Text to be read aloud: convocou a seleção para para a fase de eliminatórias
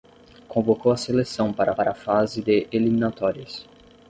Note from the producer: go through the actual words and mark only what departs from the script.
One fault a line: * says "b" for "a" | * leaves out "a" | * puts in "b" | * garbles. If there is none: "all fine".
all fine